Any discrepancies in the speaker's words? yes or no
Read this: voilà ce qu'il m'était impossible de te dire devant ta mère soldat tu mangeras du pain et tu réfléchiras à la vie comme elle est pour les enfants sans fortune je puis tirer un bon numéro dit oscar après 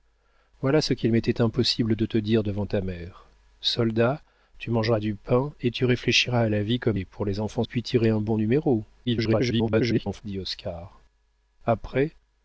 yes